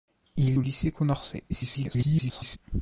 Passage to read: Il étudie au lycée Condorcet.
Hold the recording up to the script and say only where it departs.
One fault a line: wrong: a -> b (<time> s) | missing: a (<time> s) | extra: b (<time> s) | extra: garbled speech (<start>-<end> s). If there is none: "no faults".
missing: étudie (0.6 s)
extra: garbled speech (1.5-2.6 s)